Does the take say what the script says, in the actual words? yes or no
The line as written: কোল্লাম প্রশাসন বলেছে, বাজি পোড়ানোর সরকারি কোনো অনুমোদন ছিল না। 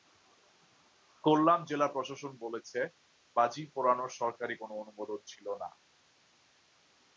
no